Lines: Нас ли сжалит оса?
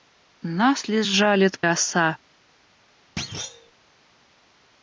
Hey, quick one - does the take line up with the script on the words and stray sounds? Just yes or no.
no